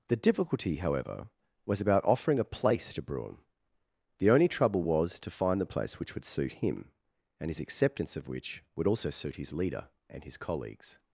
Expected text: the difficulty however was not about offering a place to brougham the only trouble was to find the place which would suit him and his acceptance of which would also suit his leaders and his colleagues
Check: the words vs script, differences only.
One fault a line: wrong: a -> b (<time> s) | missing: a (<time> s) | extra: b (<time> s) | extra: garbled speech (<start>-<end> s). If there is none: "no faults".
missing: not (1.8 s)
wrong: leaders -> leader (9.5 s)